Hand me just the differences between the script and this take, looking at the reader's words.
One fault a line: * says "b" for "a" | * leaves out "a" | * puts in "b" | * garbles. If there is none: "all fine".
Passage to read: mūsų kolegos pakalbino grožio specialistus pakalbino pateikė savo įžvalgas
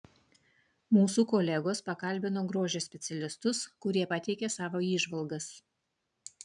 * says "kurie" for "pakalbino"